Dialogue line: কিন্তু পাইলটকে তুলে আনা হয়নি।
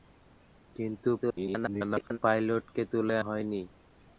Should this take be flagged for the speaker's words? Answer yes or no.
yes